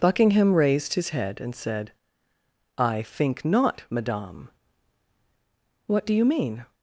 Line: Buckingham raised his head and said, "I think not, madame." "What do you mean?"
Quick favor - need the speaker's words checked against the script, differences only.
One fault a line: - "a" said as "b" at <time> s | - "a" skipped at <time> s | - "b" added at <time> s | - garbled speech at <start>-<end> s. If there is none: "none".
none